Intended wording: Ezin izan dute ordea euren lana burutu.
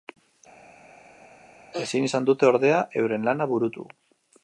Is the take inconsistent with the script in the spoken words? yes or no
no